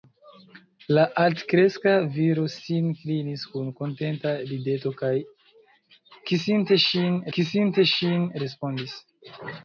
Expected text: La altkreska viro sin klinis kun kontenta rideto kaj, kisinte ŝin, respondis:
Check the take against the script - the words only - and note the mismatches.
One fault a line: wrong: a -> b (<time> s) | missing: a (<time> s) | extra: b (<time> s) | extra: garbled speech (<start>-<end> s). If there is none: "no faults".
extra: kisinte ŝin (7.4 s)